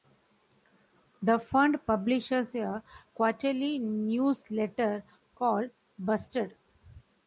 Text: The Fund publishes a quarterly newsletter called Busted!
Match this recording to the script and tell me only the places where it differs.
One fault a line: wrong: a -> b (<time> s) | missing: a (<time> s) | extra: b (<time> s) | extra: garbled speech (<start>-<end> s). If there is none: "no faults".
no faults